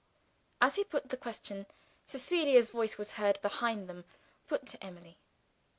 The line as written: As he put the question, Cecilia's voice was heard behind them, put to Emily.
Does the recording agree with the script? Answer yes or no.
yes